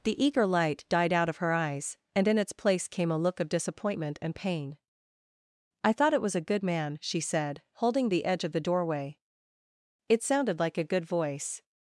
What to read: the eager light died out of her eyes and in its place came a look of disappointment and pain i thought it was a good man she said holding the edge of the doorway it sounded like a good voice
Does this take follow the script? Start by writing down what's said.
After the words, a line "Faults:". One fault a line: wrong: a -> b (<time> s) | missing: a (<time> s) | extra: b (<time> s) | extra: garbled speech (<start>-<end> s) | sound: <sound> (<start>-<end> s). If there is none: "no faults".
the eager light died out of her eyes and in its place came a look of disappointment and pain i thought it was a good man she said holding the edge of the doorway it sounded like a good voice
Faults:
no faults